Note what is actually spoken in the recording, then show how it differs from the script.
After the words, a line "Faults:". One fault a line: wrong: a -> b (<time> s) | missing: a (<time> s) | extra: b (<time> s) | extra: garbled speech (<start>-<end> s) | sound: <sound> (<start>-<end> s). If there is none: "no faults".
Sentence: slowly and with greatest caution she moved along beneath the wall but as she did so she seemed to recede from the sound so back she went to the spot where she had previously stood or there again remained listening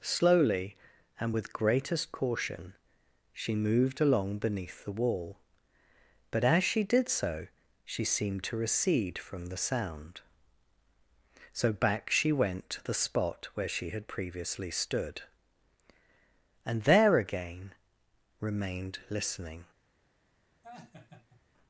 slowly and with greatest caution she moved along beneath the wall but as she did so she seemed to recede from the sound so back she went to the spot where she had previously stood and there again remained listening
Faults:
wrong: or -> and (16.6 s)
sound: laugh (20.6-21.4 s)